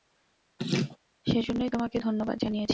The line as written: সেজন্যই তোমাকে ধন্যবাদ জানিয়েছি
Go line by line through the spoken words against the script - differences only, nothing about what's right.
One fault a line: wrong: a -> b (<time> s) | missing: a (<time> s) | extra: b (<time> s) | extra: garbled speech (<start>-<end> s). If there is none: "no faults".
no faults